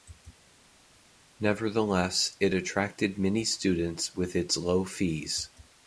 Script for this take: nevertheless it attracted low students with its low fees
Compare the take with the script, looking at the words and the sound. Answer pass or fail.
fail